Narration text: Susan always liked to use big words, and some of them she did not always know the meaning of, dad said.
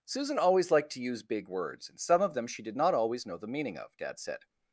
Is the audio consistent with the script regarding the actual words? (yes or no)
yes